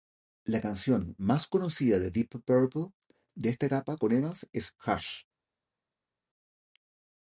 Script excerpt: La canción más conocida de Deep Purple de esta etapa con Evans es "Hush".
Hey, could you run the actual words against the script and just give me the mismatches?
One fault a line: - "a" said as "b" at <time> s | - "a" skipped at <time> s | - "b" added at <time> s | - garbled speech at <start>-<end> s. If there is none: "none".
none